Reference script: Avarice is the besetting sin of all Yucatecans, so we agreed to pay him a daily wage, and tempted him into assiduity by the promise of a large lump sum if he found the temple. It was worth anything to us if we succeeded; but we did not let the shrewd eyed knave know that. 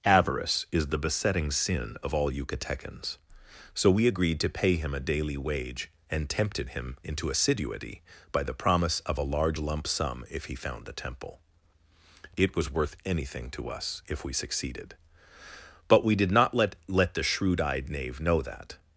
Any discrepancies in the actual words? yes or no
yes